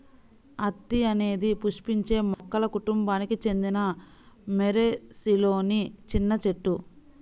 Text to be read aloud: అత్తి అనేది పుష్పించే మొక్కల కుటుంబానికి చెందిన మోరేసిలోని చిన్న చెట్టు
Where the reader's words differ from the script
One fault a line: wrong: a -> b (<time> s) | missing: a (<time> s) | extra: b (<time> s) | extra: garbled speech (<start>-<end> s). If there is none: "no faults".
no faults